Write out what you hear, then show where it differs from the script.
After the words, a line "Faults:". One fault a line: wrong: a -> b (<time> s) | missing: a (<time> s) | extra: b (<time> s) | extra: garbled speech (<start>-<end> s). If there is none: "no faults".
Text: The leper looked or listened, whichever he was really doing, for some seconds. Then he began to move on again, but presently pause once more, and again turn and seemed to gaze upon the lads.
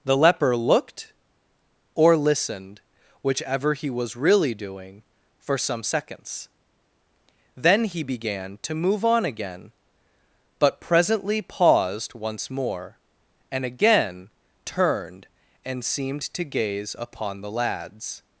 The leper looked or listened, whichever he was really doing, for some seconds. Then he began to move on again, but presently paused once more, and again turned and seemed to gaze upon the lads.
Faults:
wrong: pause -> paused (11.4 s)
wrong: turn -> turned (14.7 s)